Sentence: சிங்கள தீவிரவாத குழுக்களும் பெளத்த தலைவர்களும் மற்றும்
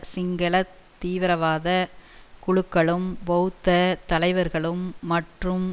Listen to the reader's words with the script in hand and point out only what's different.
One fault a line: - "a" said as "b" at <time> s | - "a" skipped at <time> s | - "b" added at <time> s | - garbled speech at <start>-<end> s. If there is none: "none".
none